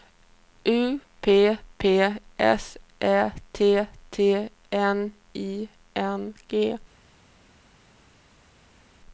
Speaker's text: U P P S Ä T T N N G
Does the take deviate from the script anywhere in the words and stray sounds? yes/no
yes